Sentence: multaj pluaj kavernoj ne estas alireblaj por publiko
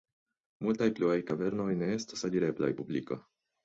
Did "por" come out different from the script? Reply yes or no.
yes